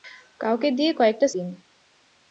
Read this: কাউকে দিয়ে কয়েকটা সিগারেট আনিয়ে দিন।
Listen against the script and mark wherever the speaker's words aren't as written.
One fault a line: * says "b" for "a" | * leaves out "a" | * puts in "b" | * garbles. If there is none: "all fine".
* leaves out "সিগারেট আনিয়ে"